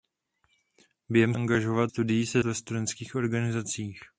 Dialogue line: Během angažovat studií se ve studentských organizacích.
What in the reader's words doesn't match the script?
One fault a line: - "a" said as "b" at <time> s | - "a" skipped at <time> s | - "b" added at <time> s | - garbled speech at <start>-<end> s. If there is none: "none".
none